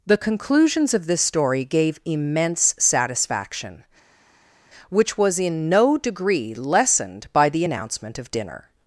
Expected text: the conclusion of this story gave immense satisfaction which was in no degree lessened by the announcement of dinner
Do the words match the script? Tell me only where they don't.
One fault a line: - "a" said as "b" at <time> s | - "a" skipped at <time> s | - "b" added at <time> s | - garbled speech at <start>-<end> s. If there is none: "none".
- "conclusion" said as "conclusions" at 0.2 s